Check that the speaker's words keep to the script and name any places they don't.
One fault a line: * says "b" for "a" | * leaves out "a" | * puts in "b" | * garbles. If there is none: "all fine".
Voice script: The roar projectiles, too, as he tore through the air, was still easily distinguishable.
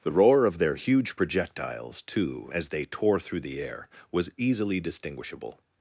* puts in "of their huge"
* says "they" for "he"
* leaves out "still"